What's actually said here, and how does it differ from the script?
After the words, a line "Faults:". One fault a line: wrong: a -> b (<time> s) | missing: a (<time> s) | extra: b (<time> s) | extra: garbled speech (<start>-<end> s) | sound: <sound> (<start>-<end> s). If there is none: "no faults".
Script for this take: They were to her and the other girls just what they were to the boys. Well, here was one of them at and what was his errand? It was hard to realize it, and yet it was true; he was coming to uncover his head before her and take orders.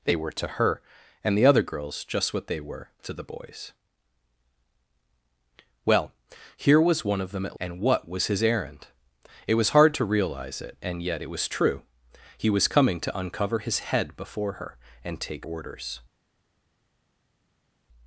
They were to her and the other girls just what they were to the boys. Well, here was one of them at and what was his errand? It was hard to realize it, and yet it was true; he was coming to uncover his head before her and take orders.
Faults:
no faults